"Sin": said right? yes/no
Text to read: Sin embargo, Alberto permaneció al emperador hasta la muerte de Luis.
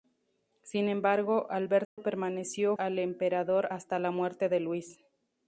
yes